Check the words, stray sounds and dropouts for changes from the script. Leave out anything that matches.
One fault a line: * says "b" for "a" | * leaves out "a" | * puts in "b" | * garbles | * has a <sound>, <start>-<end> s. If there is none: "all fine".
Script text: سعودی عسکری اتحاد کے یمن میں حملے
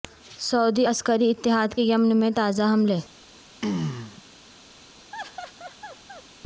* puts in "تازہ"
* has a throat clearing, 3.6-4.2 s
* has a laugh, 5.1-6.2 s